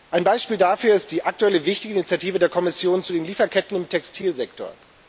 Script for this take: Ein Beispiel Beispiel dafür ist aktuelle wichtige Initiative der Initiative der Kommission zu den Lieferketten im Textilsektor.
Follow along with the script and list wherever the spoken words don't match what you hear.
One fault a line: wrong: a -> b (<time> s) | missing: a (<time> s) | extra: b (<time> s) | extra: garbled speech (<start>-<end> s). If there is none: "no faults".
missing: Beispiel (0.6 s)
extra: die (1.1 s)
missing: Initiative der (2.5 s)